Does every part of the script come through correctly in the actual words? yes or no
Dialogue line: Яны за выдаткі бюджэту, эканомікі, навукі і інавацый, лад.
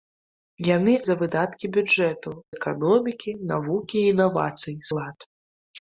yes